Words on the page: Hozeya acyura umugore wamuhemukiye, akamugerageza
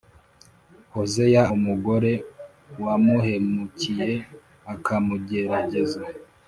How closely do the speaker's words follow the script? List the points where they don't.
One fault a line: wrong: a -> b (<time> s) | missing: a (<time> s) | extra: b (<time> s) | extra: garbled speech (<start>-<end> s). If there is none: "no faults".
missing: acyura (1.4 s)